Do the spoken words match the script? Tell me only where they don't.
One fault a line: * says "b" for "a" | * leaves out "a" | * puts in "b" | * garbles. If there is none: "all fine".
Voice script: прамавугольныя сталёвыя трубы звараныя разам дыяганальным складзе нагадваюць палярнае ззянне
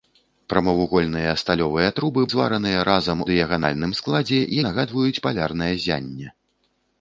all fine